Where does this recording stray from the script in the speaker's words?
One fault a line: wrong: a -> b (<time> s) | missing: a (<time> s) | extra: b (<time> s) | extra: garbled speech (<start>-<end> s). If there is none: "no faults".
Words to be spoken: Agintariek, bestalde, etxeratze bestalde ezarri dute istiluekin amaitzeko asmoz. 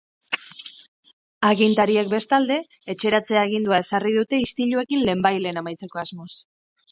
wrong: bestalde -> agindua (3.4 s)
extra: lehenbailehen (5.1 s)